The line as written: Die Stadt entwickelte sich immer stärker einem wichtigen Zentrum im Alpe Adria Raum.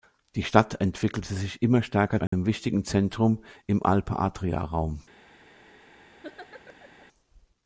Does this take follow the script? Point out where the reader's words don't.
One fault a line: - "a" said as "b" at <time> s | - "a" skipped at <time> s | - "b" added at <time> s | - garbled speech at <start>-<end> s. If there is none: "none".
none